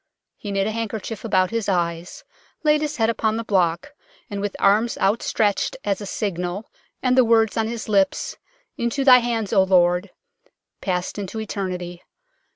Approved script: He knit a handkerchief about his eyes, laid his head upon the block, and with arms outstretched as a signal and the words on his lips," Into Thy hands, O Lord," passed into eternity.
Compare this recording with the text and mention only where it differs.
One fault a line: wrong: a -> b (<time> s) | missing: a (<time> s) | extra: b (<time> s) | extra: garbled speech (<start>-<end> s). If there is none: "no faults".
no faults